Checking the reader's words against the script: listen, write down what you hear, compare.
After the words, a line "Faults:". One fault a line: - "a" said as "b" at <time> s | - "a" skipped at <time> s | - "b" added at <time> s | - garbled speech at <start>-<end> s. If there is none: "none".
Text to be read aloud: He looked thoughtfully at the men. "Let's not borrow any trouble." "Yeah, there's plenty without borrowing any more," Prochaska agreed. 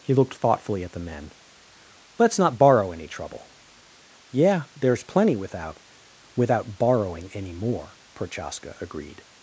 He looked thoughtfully at the men. "Let's not borrow any trouble." "Yeah, there's plenty without without borrowing any more," Prochaska agreed.
Faults:
- "without" added at 6.4 s